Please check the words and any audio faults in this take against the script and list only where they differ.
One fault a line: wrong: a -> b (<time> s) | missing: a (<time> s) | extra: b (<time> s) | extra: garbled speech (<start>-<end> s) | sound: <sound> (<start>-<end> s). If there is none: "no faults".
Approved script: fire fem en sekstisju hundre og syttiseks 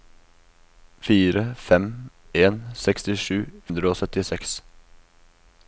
no faults